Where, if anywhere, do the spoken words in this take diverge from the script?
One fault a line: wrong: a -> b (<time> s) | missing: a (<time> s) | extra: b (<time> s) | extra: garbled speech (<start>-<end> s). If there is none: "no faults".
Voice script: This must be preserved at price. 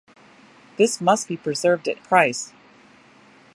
no faults